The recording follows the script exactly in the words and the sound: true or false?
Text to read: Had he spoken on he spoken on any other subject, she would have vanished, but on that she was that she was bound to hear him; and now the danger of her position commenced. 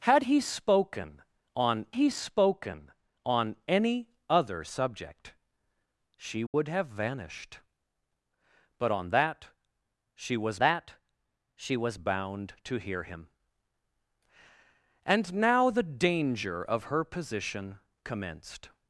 false